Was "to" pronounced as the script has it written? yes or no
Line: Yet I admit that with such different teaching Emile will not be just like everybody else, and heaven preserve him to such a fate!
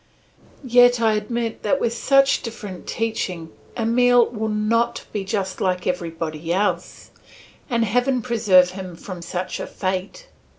no